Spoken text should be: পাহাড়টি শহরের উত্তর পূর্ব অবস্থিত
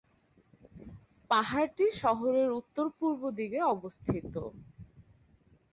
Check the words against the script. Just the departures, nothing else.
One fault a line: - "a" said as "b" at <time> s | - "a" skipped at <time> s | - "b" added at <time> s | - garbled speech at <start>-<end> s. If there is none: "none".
- "দিকে" added at 3.4 s